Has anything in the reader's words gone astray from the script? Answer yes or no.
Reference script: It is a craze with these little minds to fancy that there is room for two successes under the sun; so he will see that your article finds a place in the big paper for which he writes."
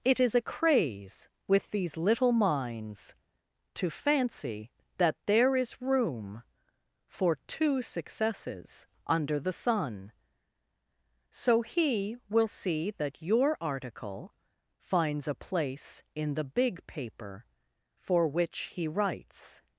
no